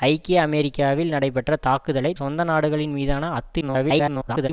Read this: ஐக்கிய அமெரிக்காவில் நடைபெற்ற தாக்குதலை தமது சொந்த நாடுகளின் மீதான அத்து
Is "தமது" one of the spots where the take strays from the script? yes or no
yes